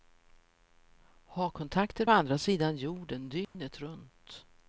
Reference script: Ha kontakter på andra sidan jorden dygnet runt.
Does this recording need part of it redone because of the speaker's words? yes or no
yes